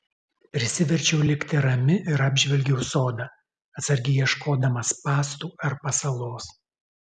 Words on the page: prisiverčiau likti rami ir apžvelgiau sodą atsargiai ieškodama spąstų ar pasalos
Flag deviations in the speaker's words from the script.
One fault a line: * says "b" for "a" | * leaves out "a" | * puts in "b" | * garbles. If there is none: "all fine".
all fine